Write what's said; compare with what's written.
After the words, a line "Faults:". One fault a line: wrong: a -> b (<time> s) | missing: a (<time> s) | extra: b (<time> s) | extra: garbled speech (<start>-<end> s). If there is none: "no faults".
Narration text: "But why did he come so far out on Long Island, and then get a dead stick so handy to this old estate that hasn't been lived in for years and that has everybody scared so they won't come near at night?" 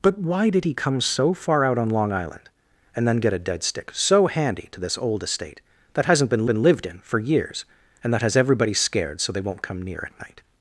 "But why did he come so far out on Long Island, and then get a dead stick so handy to this old estate that hasn't been been lived in for years and that has everybody scared so they won't come near at night?"
Faults:
extra: been (6.5 s)